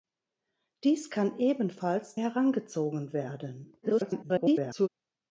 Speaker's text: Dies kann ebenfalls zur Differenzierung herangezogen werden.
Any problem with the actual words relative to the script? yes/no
yes